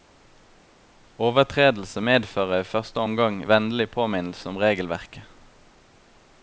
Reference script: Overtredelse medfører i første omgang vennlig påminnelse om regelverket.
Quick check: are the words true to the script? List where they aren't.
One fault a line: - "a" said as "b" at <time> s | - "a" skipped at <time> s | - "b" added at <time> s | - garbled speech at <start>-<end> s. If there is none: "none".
none